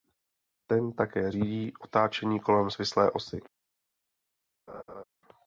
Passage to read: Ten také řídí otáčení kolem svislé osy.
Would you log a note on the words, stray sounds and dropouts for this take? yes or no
yes